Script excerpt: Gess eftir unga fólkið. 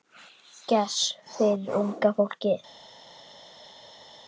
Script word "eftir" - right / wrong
wrong